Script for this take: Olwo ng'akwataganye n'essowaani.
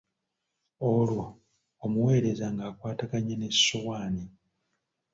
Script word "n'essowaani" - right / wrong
right